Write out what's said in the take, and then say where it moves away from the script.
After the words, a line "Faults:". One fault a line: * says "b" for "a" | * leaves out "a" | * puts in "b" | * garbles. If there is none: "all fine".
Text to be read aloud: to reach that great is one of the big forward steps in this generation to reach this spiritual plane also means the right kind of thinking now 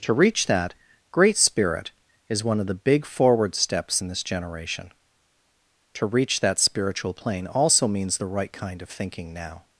to reach that great spirit is one of the big forward steps in this generation to reach that spiritual plane also means the right kind of thinking now
Faults:
* puts in "spirit"
* says "that" for "this"